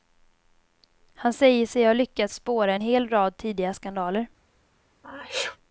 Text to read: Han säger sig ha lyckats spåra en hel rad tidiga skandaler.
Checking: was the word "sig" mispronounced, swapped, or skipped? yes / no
no